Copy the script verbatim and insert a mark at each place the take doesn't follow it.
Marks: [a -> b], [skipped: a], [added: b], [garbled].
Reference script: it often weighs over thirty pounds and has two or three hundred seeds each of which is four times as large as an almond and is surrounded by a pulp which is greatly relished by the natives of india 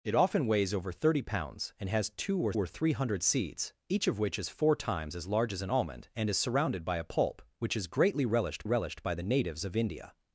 it often weighs over thirty pounds and has two or [added: or] three hundred seeds each of which is four times as large as an almond and is surrounded by a pulp which is greatly relished [added: relished] by the natives of india